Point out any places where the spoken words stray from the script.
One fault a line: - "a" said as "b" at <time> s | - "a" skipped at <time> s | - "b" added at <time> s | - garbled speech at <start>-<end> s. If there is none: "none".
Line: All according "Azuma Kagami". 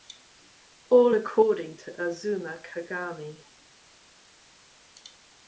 - "to" added at 1.7 s